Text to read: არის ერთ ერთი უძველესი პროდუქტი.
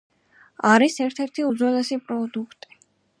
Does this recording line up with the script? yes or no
yes